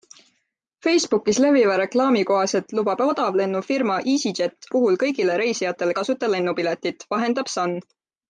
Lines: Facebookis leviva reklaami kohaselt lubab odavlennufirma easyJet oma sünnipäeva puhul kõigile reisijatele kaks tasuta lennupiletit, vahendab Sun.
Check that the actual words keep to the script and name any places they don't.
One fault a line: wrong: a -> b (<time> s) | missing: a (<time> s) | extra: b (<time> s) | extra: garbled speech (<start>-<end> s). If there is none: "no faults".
missing: oma sünnipäeva (4.7 s)
missing: kaks (6.0 s)